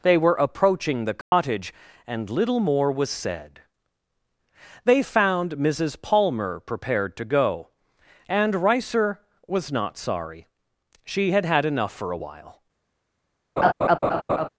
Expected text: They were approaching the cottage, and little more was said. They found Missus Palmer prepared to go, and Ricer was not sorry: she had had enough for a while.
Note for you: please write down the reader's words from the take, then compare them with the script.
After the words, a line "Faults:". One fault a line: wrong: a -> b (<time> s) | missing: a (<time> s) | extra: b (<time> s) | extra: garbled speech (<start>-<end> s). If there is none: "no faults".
They were approaching the cottage, and little more was said. They found Missus Palmer prepared to go, and Ricer was not sorry: she had had enough for a while.
Faults:
no faults